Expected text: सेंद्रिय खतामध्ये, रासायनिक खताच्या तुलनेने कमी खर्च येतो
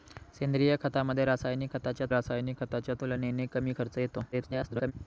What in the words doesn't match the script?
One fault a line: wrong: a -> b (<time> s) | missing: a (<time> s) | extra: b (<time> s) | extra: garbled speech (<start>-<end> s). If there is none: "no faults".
extra: रासायनिक खताच्या (2.1 s)
extra: garbled speech (4.3-4.9 s)